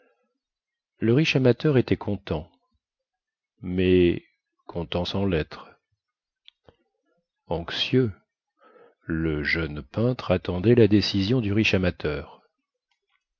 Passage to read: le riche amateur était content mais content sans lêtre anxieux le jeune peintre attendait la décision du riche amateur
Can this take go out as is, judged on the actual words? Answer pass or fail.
pass